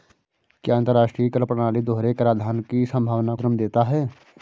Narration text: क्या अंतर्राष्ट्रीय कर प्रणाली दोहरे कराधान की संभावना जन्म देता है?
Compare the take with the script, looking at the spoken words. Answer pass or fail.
pass